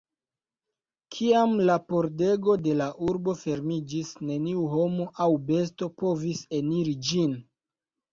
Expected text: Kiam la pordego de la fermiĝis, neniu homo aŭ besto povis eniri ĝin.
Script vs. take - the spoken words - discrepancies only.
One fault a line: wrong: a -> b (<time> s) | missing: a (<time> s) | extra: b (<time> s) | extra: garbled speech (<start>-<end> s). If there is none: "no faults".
extra: urbo (3.1 s)